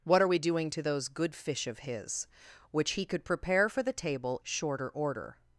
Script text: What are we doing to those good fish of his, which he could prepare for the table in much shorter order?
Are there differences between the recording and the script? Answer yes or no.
yes